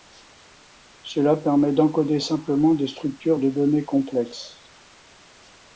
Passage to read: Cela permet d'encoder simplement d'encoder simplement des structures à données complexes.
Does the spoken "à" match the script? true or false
false